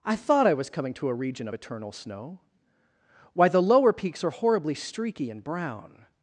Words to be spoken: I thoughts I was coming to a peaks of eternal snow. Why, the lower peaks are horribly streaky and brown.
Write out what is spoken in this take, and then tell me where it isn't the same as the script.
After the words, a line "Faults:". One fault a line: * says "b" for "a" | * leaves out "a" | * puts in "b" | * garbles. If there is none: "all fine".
I thought I was coming to a region of eternal snow. Why, the lower peaks are horribly streaky and brown.
Faults:
* says "thought" for "thoughts"
* says "region" for "peaks"